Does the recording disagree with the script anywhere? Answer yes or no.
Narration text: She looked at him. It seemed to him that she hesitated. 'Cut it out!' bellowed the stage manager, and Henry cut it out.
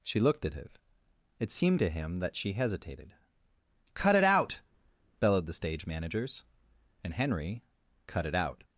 yes